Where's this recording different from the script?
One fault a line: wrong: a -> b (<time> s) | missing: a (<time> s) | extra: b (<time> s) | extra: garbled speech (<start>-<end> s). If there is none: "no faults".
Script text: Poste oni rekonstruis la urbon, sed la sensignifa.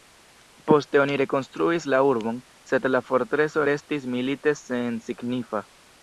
extra: fortreso restis milite (3.1 s)